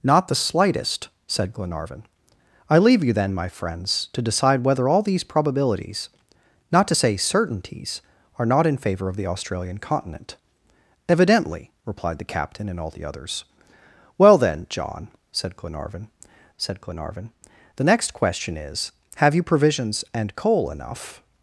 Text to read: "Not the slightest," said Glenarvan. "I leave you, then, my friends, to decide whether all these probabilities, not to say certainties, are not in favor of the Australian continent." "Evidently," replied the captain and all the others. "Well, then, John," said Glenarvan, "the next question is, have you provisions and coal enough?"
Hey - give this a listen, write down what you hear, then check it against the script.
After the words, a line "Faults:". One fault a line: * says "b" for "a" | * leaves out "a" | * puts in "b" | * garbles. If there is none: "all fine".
"Not the slightest," said Glenarvan. "I leave you, then, my friends, to decide whether all these probabilities, not to say certainties, are not in favor of the Australian continent." "Evidently," replied the captain and all the others. "Well, then, John," said Glenarvan said Glenarvan, "the next question is, have you provisions and coal enough?"
Faults:
* puts in "said Glenarvan"